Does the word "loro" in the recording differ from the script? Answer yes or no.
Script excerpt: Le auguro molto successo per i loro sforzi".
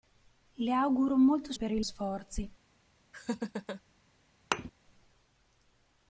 yes